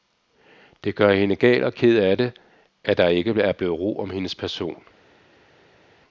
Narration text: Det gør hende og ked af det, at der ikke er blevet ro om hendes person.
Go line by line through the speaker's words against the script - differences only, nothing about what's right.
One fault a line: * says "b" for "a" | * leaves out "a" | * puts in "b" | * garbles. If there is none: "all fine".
* puts in "gal"